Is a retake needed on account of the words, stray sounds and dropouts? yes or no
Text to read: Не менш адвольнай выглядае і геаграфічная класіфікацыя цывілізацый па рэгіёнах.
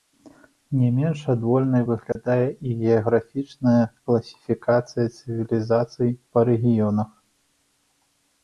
yes